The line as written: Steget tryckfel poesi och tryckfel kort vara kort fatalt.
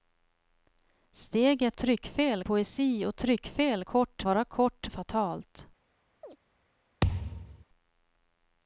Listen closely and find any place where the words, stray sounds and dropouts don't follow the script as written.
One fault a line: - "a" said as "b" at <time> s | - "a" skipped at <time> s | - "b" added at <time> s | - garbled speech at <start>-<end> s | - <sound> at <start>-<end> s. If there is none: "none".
- chirp at 6.2-6.4 s
- thud at 7.0-7.6 s